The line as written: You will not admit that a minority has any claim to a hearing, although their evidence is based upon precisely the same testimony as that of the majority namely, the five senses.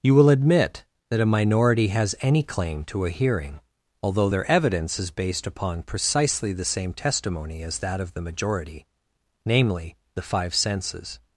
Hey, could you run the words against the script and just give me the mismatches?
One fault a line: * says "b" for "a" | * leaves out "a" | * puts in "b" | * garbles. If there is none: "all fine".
* leaves out "not"